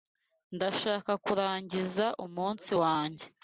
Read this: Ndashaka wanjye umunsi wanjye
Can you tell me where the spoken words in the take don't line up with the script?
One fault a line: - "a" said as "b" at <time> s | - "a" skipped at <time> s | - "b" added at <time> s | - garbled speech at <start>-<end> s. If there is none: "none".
- "wanjye" said as "kurangiza" at 1.2 s